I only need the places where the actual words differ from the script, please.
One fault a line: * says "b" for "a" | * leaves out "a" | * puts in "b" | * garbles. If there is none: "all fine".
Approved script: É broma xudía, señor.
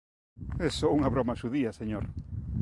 * puts in "só unha"